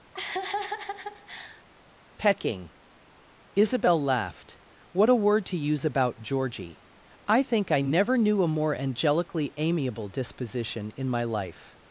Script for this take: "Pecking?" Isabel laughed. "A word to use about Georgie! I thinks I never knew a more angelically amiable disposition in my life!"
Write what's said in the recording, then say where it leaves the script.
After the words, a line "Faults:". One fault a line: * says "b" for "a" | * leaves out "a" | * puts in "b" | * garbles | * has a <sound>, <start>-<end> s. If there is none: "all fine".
"Pecking?" Isabel laughed. "What a word to use about Georgie! I think I never knew a more angelically amiable disposition in my life!"
Faults:
* has a laugh, 0.1-1.6 s
* puts in "What"
* says "think" for "thinks"